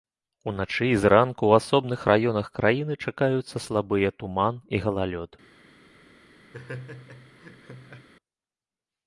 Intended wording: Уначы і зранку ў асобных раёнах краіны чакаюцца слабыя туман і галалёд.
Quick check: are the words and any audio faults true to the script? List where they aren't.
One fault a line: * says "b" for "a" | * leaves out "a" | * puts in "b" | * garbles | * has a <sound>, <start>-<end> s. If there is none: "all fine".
* has a laugh, 6.5-8.1 s